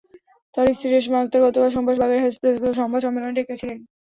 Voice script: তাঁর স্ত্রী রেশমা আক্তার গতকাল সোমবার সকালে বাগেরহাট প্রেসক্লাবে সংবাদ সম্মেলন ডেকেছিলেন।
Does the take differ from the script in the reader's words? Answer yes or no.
yes